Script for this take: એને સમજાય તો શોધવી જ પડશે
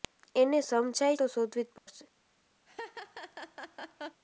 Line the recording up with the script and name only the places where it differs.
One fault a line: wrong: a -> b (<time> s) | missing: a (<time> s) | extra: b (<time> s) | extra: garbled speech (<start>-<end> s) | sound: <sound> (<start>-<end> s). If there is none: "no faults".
sound: dropout (1.8-1.9 s)
sound: laugh (2.7-4.2 s)